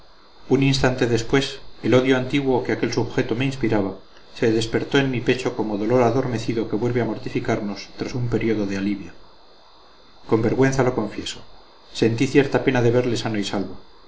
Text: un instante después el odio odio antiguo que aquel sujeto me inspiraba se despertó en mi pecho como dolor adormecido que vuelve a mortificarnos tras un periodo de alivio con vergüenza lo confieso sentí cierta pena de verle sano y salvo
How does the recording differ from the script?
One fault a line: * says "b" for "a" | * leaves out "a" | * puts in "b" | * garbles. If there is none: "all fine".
* leaves out "odio"